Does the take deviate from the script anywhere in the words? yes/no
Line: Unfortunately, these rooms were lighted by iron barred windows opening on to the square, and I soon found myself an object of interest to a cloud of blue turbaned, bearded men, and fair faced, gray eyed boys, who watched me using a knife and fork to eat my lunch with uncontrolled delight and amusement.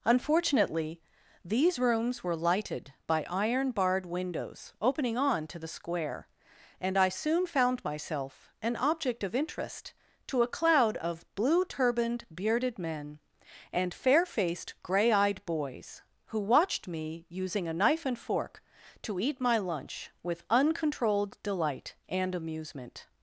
no